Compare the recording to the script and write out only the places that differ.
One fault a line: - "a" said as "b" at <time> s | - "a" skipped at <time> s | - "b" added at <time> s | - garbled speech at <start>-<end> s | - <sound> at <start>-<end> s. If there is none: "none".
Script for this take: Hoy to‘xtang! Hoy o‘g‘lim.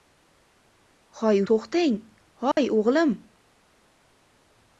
- dropout at 2.5-2.6 s